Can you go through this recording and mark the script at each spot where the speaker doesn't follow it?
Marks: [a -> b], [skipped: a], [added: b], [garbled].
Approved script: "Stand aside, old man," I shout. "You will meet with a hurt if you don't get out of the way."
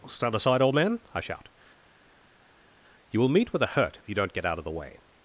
"Stand aside, old man," I shout. "You will meet with a hurt if you don't get out of the way."